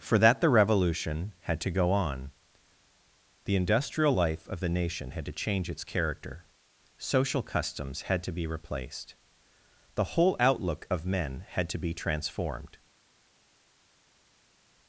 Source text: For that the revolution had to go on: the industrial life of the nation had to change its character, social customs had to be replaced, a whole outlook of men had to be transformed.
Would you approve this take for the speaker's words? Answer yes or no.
no